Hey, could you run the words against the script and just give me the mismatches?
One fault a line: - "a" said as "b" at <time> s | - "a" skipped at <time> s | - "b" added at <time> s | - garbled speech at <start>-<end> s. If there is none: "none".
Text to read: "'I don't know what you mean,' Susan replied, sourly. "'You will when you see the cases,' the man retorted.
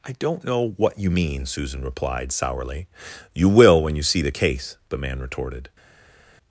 - "cases" said as "case" at 4.3 s